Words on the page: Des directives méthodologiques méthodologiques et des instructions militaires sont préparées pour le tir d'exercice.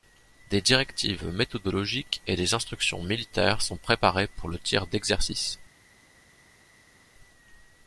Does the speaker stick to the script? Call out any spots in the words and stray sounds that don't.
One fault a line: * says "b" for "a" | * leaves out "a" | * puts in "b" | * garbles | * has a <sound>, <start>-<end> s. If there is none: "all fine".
* leaves out "méthodologiques"